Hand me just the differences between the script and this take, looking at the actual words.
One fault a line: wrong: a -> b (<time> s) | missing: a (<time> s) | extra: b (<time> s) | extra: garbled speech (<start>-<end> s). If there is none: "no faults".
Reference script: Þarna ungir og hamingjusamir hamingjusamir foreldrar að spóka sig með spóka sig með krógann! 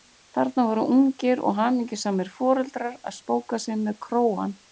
extra: voru (0.7 s)
missing: hamingjusamir (2.3 s)
missing: spóka sig með (4.0 s)